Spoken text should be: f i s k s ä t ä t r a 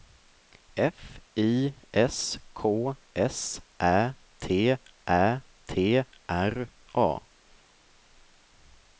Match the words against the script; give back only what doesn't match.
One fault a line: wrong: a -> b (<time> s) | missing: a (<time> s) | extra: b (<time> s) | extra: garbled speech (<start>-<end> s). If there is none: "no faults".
no faults